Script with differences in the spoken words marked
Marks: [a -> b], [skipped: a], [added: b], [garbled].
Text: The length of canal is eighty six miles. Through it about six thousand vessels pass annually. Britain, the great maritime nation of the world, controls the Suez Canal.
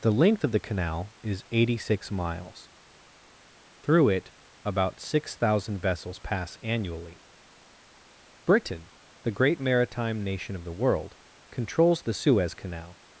The length of [added: the] canal is eighty six miles. Through it about six thousand vessels pass annually. Britain, the great maritime nation of the world, controls the Suez Canal.